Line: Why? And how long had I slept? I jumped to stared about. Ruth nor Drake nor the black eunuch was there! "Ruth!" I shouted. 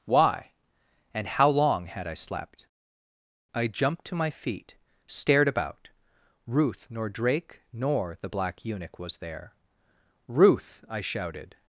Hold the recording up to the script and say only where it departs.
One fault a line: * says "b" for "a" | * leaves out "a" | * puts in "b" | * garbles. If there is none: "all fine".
* puts in "my feet"